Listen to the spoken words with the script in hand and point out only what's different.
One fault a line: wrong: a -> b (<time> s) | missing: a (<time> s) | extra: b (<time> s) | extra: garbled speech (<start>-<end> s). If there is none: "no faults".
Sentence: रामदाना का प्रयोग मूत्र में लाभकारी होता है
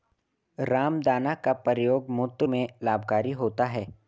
no faults